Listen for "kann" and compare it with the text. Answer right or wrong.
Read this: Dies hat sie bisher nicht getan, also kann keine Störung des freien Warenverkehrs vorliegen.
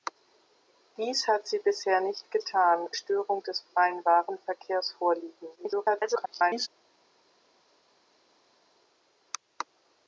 wrong